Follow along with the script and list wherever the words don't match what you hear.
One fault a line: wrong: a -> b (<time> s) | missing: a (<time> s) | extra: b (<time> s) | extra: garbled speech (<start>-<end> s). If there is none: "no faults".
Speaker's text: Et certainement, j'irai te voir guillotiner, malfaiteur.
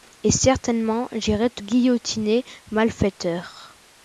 missing: voir (1.6 s)